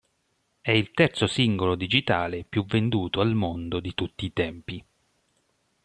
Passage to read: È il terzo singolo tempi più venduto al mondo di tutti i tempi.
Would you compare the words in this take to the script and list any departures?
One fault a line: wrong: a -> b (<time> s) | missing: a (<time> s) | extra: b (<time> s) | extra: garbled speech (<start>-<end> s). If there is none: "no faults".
wrong: tempi -> digitale (1.8 s)